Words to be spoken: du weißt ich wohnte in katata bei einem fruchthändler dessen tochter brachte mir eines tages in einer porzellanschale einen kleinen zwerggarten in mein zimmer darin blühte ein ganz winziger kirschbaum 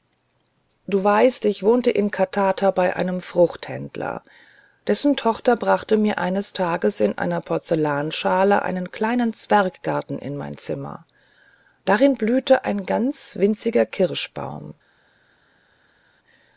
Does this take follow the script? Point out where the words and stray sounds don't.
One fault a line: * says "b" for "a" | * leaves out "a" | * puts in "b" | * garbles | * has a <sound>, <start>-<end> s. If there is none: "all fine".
all fine